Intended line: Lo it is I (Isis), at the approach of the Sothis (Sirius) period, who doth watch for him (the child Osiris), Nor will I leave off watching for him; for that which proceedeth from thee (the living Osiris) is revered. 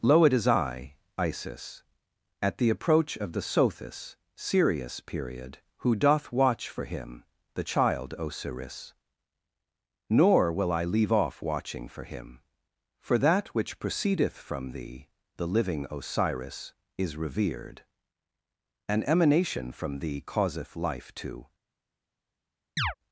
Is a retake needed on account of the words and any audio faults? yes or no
yes